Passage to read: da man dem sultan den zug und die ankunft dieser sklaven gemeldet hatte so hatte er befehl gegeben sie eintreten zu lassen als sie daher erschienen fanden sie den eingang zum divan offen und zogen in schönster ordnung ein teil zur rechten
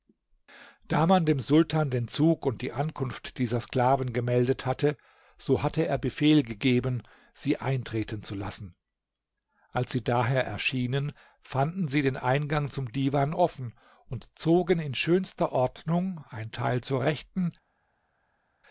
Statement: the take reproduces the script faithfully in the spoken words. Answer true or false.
true